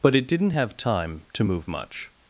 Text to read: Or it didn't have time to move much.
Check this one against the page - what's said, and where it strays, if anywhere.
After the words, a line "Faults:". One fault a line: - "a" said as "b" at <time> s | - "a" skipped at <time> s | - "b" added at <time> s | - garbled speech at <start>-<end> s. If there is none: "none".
But it didn't have time to move much.
Faults:
- "Or" said as "But" at 0.0 s